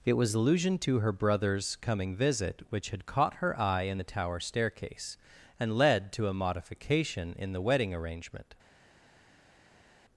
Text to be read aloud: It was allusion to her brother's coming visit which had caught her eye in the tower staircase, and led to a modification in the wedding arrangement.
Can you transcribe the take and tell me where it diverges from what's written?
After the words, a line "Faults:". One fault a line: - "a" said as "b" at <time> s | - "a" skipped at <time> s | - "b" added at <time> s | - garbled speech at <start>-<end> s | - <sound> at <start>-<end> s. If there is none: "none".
It was allusion to her brother's coming visit which had caught her eye in the tower staircase, and led to a modification in the wedding arrangement.
Faults:
none